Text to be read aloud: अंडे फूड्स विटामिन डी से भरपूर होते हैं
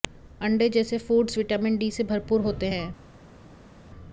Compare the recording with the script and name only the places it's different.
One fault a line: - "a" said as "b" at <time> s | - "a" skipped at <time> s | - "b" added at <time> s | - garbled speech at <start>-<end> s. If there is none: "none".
- "जैसे" added at 0.7 s